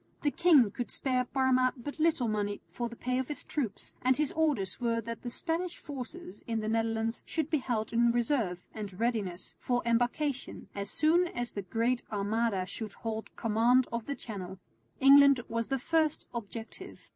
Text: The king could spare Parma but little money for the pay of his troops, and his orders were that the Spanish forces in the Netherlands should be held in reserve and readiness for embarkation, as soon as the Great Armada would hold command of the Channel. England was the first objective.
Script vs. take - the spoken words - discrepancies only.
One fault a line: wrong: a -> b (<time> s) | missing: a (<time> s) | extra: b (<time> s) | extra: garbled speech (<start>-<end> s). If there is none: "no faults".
wrong: would -> should (12.7 s)